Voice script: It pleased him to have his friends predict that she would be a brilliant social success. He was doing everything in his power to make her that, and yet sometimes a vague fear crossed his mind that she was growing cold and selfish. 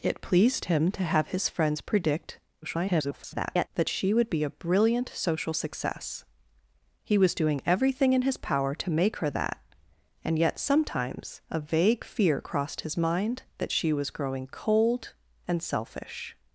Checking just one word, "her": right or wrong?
right